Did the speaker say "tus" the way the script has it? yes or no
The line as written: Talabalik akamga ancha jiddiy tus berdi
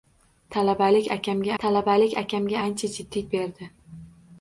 no